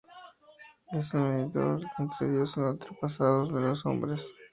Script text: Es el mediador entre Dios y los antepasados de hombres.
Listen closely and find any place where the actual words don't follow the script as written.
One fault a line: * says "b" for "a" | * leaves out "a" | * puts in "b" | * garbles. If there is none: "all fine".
* puts in "los"